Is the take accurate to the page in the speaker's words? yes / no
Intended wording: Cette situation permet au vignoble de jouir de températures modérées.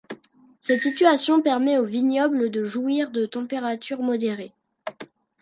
yes